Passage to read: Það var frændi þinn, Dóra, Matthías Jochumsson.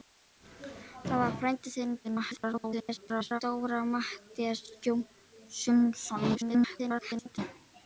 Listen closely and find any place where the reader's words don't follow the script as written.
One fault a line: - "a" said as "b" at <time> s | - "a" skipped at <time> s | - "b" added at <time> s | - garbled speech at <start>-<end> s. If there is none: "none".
- garbled speech at 2.0-3.4 s
- garbled speech at 6.3-7.4 s